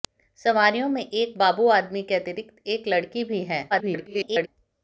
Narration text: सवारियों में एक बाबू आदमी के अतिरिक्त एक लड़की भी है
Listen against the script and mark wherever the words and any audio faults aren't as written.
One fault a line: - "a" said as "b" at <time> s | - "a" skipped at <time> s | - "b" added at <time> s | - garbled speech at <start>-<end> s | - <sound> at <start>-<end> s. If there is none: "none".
- garbled speech at 3.7-4.5 s